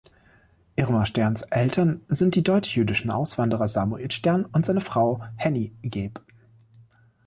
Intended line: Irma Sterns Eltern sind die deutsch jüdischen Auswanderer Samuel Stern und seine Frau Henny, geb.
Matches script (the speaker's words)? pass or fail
pass